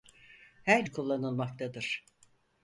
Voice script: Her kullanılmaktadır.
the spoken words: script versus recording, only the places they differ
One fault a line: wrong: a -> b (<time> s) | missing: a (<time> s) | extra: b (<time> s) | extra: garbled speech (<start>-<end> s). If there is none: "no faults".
no faults